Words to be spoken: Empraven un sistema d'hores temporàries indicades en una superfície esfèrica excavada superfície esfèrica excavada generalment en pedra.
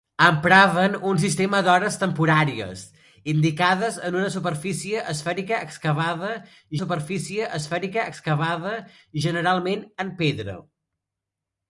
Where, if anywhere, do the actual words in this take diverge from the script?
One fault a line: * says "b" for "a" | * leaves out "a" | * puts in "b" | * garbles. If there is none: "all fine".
all fine